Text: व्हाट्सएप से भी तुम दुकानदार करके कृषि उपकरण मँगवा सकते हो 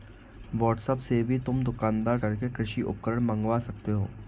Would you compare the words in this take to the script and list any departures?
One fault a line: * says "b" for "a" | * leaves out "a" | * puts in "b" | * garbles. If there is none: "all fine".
all fine